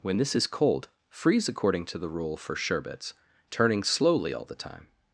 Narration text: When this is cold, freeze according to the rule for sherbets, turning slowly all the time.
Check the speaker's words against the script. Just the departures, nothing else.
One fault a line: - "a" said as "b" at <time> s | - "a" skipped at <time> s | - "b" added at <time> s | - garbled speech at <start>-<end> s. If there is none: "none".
none